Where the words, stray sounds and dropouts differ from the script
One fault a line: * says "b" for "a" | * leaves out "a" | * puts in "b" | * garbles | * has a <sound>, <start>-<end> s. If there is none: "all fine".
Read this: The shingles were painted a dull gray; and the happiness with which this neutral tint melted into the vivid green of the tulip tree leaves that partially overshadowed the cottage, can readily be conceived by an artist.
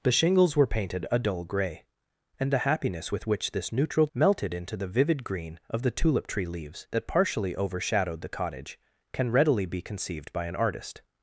* leaves out "tint"